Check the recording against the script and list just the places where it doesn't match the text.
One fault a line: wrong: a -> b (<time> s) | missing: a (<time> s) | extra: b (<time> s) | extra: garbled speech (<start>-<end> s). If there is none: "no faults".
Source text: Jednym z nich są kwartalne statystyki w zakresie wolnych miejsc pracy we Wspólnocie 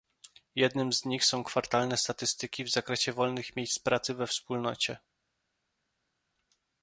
no faults